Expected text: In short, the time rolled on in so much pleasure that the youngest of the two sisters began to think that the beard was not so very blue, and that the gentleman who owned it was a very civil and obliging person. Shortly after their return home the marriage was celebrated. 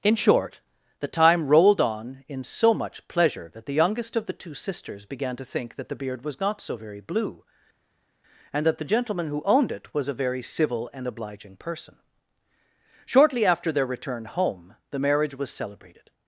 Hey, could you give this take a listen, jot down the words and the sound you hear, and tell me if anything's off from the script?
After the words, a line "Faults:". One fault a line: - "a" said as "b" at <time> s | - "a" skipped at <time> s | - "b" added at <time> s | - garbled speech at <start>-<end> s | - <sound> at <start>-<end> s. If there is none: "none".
In short, the time rolled on in so much pleasure that the youngest of the two sisters began to think that the beard was not so very blue, and that the gentleman who owned it was a very civil and obliging person. Shortly after their return home the marriage was celebrated.
Faults:
none